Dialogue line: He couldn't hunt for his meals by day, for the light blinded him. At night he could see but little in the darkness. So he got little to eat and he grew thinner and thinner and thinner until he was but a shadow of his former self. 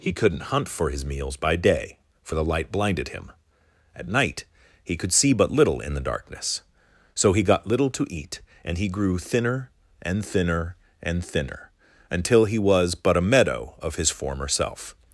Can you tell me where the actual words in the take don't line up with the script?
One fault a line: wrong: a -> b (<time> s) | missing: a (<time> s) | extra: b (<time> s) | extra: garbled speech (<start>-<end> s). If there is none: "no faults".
wrong: shadow -> meadow (13.2 s)